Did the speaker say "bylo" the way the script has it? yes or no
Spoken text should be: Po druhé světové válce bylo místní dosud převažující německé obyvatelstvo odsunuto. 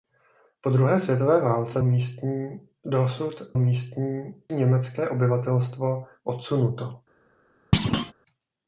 no